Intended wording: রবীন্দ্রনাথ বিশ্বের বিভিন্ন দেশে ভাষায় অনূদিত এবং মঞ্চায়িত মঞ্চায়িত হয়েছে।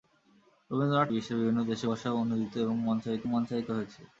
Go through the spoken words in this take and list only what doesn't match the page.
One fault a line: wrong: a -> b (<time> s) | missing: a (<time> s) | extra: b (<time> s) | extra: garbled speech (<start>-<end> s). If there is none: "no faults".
no faults